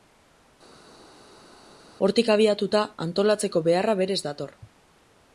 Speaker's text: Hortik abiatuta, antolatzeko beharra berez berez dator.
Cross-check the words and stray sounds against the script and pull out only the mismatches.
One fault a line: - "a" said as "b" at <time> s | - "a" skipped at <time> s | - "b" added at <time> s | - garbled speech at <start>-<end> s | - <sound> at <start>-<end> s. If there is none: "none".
- "berez" skipped at 4.2 s